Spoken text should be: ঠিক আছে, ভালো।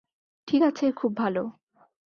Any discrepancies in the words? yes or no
yes